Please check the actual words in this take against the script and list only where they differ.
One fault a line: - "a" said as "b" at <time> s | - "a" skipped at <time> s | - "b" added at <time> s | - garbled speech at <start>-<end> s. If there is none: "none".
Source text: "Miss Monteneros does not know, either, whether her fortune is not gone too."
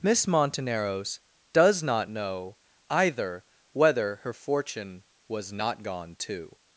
- "is" said as "was" at 5.3 s